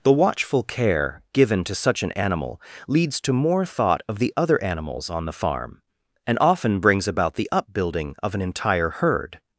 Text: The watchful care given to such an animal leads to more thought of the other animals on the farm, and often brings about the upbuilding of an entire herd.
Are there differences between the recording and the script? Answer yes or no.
no